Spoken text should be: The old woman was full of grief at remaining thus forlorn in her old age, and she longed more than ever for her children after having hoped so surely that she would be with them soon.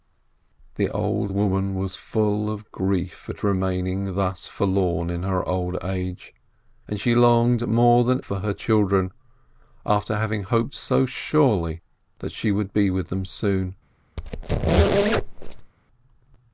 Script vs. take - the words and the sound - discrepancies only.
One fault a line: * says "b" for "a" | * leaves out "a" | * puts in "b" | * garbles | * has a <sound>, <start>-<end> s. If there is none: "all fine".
* leaves out "ever"
* has a squeak, 14.2-15.7 s